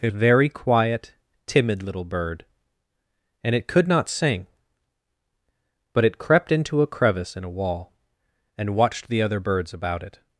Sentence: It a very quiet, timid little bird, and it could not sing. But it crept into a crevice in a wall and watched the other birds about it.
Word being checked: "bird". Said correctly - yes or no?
yes